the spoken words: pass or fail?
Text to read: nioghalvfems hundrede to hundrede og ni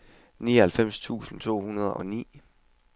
fail